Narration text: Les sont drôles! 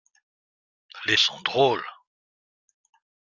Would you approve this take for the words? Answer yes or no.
yes